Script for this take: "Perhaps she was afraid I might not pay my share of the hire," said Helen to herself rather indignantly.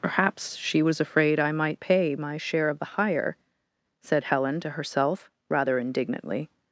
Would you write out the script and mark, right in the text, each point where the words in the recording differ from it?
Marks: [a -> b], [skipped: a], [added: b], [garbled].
"Perhaps she was afraid I might [skipped: not] pay my share of the hire," said Helen to herself rather indignantly.